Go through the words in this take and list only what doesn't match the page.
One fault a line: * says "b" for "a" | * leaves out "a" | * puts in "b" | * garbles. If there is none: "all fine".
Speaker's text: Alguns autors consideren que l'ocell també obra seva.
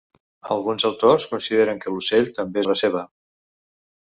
all fine